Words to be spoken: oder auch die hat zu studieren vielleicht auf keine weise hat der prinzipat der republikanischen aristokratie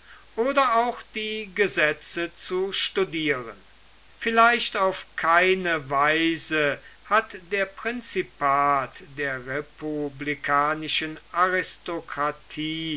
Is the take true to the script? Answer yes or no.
no